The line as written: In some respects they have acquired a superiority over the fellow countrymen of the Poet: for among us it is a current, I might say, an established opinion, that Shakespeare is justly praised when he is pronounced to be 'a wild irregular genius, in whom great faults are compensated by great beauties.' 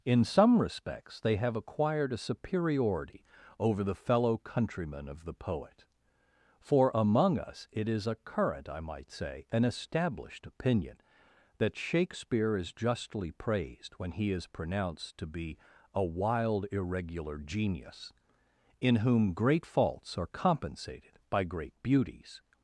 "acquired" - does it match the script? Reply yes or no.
yes